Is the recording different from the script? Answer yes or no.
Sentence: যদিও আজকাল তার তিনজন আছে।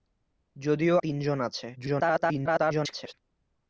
yes